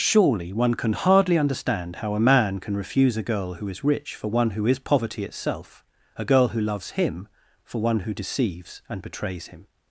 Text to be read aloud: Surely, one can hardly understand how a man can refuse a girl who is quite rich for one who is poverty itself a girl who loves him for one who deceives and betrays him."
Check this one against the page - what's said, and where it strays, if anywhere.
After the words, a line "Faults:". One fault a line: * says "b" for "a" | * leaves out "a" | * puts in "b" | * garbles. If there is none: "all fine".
Surely, one can hardly understand how a man can refuse a girl who is rich for one who is poverty itself a girl who loves him for one who deceives and betrays him."
Faults:
* leaves out "quite"